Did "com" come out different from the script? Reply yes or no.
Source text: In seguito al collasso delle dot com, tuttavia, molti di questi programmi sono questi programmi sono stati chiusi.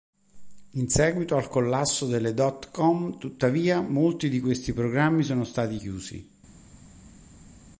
no